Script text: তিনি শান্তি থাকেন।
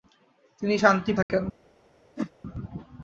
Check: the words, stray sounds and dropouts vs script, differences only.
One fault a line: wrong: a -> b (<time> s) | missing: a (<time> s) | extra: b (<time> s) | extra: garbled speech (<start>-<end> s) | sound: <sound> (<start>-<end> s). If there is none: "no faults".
sound: dropout (1.2-1.3 s)
sound: whoosh (2.2-2.3 s)